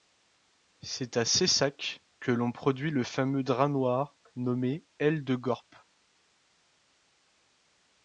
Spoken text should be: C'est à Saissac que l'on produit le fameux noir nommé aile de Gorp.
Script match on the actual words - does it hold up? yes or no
no